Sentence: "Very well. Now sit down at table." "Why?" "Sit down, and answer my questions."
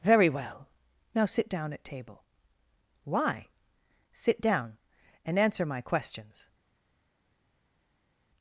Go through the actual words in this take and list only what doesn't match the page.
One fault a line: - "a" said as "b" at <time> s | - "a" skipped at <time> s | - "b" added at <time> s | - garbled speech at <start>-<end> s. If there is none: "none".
none